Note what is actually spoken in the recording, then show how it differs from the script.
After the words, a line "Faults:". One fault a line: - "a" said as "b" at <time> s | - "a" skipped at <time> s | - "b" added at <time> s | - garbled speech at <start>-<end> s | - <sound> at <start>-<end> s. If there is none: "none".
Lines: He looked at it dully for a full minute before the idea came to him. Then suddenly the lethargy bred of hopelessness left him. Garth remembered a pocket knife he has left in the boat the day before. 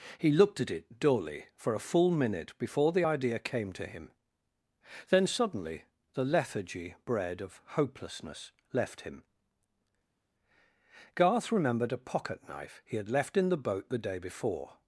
He looked at it dully for a full minute before the idea came to him. Then suddenly the lethargy bred of hopelessness left him. Garth remembered a pocket knife he had left in the boat the day before.
Faults:
- "has" said as "had" at 13.0 s